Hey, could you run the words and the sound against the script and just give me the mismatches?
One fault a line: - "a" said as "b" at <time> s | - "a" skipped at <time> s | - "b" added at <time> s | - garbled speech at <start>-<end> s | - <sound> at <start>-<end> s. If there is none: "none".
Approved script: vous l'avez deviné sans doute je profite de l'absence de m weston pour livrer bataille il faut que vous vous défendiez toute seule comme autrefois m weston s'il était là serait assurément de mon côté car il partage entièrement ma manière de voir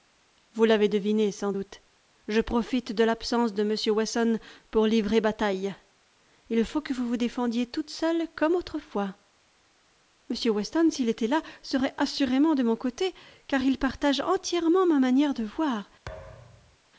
- thud at 16.1-16.8 s